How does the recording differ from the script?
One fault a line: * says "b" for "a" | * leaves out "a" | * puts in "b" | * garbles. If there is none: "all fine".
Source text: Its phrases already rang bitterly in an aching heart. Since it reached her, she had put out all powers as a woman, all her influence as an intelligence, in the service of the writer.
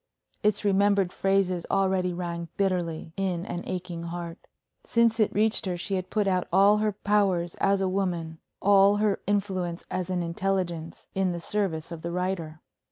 * puts in "remembered"
* puts in "her"